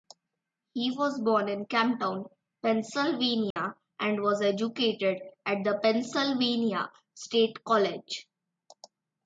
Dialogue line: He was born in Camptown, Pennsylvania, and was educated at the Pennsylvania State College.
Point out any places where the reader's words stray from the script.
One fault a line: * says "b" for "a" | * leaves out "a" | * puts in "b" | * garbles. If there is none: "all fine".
all fine